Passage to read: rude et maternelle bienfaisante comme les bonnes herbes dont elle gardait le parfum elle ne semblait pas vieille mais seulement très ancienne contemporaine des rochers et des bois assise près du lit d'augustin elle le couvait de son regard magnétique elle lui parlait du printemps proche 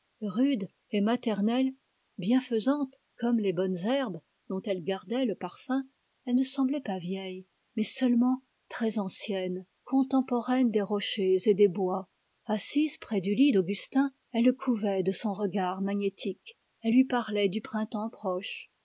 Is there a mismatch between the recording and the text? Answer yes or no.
no